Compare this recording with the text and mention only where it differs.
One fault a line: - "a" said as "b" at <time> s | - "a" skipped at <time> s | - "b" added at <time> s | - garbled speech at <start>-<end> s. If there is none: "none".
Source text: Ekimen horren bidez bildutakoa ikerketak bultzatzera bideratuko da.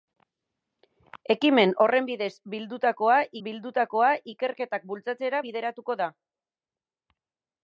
- "bildutakoa" added at 3.5 s